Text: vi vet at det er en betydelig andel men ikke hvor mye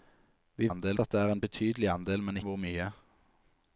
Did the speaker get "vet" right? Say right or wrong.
wrong